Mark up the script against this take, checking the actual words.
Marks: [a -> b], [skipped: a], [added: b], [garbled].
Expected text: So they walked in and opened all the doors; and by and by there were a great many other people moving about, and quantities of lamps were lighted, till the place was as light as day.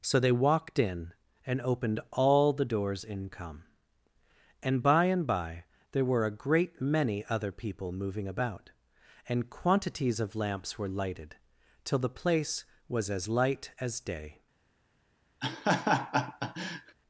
So they walked in and opened all the doors; [added: in come] and by and by there were a great many other people moving about, and quantities of lamps were lighted, till the place was as light as day.